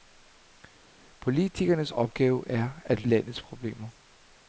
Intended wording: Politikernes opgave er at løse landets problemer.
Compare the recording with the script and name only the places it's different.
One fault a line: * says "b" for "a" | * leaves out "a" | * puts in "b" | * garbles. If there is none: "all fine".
* leaves out "løse"